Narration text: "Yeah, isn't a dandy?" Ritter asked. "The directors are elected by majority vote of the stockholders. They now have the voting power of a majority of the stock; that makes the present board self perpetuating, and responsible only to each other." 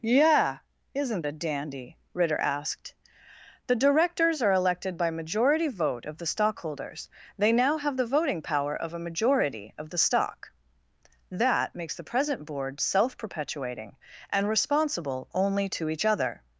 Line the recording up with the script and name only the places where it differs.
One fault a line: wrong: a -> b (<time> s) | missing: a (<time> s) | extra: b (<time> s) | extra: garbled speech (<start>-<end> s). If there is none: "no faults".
no faults